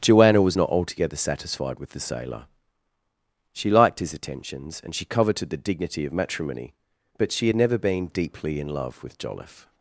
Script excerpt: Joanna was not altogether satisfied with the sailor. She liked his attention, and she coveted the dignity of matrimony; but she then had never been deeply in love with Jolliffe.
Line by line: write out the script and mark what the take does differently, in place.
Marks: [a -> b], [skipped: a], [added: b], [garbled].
Joanna was not altogether satisfied with the sailor. She liked his [attention, -> attentions] and she coveted the dignity of matrimony; but she [skipped: then] had never been deeply in love with Jolliffe.